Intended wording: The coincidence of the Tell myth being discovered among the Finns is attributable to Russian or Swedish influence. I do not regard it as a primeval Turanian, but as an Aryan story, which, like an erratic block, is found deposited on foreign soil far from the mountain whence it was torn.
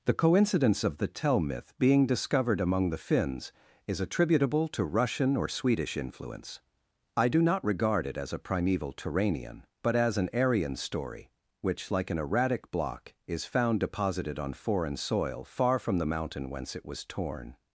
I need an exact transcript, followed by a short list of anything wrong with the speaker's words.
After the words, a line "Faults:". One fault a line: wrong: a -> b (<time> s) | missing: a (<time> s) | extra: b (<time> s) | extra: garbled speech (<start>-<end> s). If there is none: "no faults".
The coincidence of the Tell myth being discovered among the Finns is attributable to Russian or Swedish influence. I do not regard it as a primeval Turanian, but as an Aryan story, which, like an erratic block, is found deposited on foreign soil far from the mountain whence it was torn.
Faults:
no faults